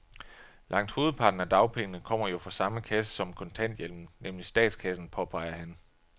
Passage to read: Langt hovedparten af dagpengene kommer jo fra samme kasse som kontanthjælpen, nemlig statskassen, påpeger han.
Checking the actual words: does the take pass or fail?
pass